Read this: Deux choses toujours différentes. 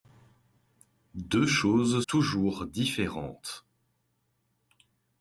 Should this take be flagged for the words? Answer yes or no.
no